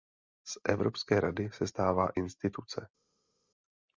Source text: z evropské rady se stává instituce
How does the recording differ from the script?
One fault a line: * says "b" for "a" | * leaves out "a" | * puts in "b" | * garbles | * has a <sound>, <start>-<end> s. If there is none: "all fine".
all fine